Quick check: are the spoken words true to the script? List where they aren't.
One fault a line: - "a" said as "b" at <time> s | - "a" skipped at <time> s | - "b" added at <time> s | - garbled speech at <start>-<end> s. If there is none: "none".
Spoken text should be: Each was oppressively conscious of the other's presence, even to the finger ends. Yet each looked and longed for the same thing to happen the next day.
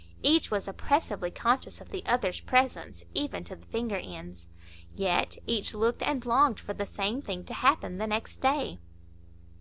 none